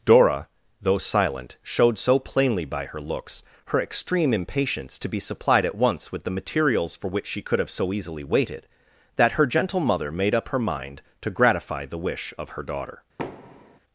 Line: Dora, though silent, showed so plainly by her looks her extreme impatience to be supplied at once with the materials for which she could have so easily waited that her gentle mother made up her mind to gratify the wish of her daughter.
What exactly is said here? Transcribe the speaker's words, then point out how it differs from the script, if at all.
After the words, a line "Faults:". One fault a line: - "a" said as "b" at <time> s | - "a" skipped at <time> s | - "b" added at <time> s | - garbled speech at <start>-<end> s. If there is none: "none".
Dora, though silent, showed so plainly by her looks her extreme impatience to be supplied at once with the materials for which she could have so easily waited that her gentle mother made up her mind to gratify the wish of her daughter.
Faults:
none